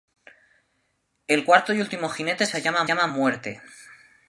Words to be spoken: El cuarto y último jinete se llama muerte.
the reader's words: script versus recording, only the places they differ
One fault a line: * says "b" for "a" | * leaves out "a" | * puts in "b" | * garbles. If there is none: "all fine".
* puts in "llama"